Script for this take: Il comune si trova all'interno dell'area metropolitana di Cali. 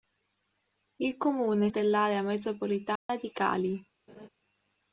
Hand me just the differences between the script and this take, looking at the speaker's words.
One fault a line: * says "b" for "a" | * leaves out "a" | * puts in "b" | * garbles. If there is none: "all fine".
* leaves out "si trova all'interno"